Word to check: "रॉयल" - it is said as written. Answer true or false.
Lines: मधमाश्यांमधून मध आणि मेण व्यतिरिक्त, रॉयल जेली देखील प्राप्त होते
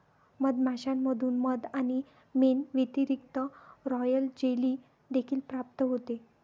true